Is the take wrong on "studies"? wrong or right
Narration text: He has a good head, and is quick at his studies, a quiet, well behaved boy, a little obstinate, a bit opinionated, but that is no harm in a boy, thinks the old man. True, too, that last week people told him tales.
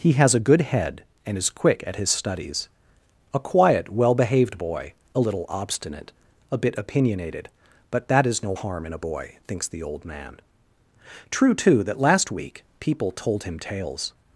right